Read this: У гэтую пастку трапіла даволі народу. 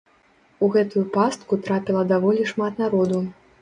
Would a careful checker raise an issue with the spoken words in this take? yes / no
yes